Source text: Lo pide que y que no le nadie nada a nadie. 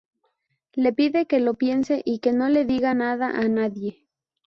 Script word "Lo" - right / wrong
wrong